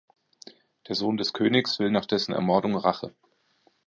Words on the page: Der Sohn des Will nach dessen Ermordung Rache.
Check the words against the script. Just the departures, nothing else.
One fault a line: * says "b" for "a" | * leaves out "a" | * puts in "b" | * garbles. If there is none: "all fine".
* puts in "Königs"